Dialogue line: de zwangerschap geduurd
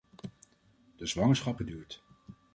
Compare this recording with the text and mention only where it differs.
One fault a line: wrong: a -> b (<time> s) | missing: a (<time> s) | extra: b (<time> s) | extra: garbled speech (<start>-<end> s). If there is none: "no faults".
no faults